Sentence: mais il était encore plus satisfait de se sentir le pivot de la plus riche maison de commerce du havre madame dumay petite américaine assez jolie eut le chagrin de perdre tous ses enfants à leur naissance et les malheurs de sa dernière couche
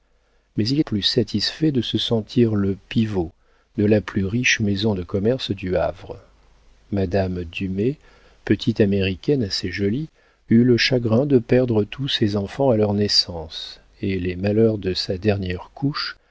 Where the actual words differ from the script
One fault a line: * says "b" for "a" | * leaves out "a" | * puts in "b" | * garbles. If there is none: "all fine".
* leaves out "était encore"